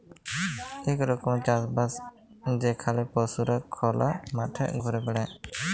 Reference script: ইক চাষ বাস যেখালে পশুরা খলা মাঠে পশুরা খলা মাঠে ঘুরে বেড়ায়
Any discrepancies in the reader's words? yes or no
yes